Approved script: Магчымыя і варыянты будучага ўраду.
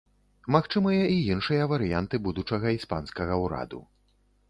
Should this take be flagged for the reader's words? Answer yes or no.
yes